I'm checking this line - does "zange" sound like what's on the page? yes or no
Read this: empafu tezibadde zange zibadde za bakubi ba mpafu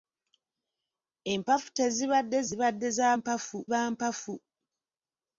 no